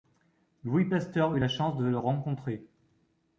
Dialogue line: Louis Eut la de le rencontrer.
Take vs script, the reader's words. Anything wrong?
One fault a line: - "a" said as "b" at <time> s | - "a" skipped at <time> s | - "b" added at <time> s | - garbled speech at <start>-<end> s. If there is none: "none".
- "Pasteur" added at 0.8 s
- "chance" added at 1.5 s